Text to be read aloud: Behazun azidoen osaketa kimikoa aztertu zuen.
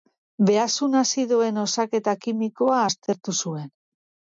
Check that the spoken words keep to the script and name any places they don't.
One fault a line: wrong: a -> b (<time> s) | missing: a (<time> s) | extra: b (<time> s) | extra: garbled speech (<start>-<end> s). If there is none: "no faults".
no faults